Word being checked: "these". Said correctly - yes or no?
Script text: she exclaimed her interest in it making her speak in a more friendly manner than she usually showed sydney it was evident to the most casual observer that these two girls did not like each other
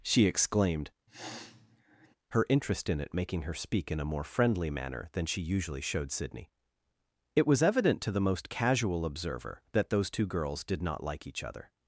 no